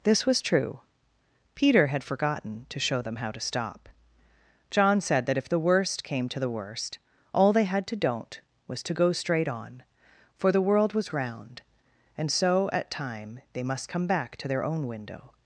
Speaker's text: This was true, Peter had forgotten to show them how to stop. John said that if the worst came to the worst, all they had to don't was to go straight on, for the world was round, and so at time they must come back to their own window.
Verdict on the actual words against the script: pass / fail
pass